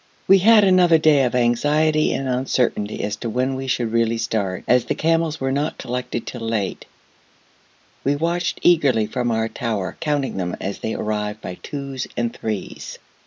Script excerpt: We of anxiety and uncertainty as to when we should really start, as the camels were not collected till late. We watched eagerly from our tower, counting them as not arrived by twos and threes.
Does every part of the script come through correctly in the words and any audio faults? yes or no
no